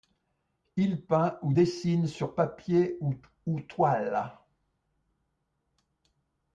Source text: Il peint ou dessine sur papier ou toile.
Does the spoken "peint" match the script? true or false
true